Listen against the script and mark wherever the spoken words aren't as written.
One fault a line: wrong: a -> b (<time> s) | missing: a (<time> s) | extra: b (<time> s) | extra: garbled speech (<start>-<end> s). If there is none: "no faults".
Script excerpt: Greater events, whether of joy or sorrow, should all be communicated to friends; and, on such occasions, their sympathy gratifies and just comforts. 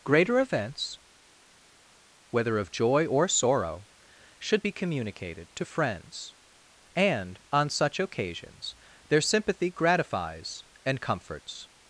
missing: all (4.6 s)
missing: just (11.0 s)